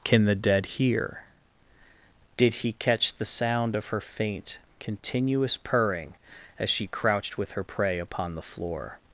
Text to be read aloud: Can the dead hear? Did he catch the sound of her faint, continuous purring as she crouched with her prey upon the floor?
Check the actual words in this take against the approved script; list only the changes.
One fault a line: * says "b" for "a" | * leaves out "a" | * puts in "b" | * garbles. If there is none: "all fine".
all fine